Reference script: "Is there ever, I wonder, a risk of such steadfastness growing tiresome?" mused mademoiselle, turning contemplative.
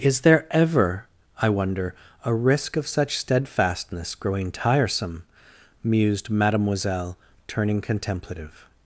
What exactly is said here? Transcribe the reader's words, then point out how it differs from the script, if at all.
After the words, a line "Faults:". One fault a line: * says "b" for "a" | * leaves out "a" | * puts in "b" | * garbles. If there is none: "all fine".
"Is there ever, I wonder, a risk of such steadfastness growing tiresome?" mused mademoiselle, turning contemplative.
Faults:
all fine